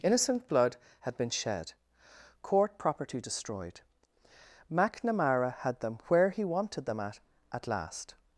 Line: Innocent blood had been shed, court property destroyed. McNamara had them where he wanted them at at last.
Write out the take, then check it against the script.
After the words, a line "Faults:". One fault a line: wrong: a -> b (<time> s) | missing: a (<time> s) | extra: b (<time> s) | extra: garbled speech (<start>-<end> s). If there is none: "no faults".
Innocent blood had been shed, court property destroyed. McNamara had them where he wanted them at at last.
Faults:
no faults